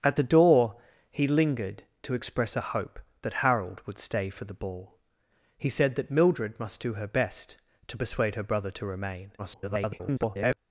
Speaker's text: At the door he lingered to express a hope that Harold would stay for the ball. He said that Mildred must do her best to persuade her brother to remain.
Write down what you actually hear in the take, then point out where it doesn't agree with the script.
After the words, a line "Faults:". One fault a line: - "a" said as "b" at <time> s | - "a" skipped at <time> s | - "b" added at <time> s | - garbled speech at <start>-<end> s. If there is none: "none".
At the door he lingered to express a hope that Harold would stay for the ball. He said that Mildred must do her best to persuade her brother to remain. [garbled]
Faults:
- garbled speech at 9.4-10.6 s